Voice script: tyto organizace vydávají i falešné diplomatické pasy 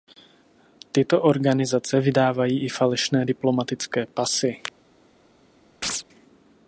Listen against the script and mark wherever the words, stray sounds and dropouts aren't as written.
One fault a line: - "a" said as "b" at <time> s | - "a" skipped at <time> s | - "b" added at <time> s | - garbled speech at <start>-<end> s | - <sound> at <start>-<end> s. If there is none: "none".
- chirp at 5.8-6.0 s